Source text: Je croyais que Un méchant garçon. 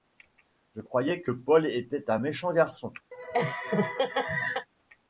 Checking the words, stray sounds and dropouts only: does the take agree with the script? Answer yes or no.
no